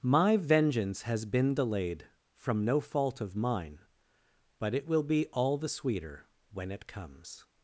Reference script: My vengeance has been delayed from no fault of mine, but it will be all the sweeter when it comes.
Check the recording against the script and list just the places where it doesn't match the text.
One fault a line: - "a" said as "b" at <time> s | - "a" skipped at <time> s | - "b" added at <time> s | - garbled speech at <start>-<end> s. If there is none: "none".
none